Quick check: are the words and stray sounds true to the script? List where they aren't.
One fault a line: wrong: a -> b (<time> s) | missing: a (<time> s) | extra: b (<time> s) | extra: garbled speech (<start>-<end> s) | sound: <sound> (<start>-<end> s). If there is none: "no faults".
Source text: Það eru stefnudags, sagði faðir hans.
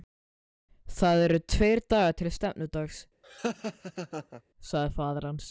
extra: tveir dagar til (1.5 s)
sound: laugh (3.2-4.4 s)